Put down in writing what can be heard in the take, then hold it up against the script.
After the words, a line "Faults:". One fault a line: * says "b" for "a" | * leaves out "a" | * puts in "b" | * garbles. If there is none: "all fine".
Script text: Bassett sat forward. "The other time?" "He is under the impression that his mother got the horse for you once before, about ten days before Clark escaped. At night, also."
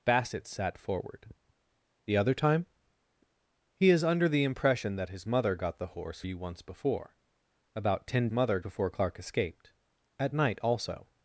Bassett sat forward. "The other time?" "He is under the impression that his mother got the horse you once before, about ten mother before Clark escaped. At night, also."
Faults:
* leaves out "for"
* says "mother" for "days"